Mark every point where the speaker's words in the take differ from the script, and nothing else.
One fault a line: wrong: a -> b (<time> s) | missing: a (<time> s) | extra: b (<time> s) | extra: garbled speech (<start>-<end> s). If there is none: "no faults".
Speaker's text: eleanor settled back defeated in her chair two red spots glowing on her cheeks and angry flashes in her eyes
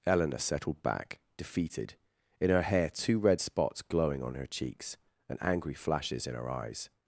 wrong: chair -> hair (2.6 s)